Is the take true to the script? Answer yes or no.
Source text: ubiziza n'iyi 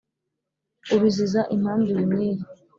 no